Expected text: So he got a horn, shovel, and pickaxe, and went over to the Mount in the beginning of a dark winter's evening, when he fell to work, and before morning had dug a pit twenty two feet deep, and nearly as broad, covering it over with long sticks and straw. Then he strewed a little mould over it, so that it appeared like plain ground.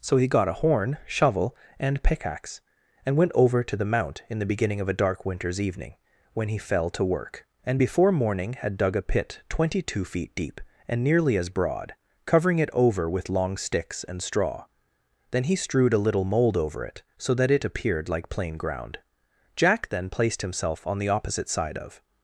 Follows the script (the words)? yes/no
no